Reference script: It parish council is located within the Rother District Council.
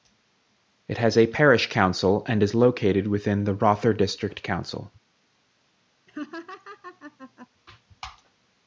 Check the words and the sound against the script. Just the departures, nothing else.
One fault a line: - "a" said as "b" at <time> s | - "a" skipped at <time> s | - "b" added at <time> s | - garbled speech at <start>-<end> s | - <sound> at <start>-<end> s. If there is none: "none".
- "has a" added at 1.0 s
- "and" added at 2.3 s
- laugh at 6.1-7.5 s